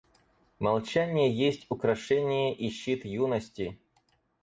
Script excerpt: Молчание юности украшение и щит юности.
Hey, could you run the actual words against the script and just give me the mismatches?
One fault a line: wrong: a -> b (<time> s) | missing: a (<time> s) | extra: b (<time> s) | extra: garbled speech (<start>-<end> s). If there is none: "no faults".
wrong: юности -> есть (1.3 s)